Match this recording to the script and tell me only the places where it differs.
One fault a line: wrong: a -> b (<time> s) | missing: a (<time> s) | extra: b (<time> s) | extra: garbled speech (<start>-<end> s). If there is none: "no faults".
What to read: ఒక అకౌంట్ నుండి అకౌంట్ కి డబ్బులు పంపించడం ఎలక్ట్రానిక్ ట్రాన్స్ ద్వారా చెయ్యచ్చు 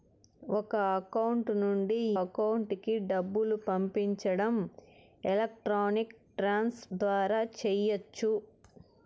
no faults